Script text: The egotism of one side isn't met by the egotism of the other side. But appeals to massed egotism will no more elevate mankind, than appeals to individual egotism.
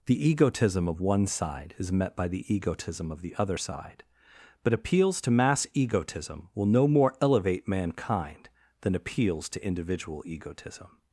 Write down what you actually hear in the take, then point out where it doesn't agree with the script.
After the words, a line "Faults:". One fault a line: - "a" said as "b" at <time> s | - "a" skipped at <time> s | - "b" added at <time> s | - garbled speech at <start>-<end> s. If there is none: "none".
The egotism of one side is met by the egotism of the other side. But appeals to mass egotism will no more elevate mankind, than appeals to individual egotism.
Faults:
- "isn't" said as "is" at 1.8 s
- "massed" said as "mass" at 5.3 s